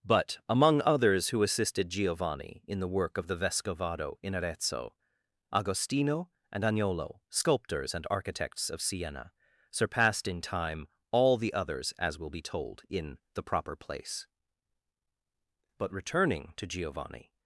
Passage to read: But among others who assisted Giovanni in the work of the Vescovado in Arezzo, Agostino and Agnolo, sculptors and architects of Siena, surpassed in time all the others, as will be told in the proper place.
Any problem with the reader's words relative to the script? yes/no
yes